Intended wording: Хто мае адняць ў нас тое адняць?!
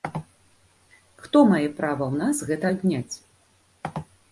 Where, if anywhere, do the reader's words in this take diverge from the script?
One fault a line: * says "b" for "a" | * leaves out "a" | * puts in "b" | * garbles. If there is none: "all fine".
* says "права" for "адняць"
* says "гэта" for "тое"